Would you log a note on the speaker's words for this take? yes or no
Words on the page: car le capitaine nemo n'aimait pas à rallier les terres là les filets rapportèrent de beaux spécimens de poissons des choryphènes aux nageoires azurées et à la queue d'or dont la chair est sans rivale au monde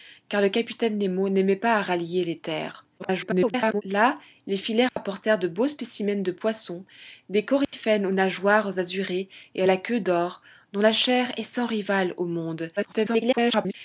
yes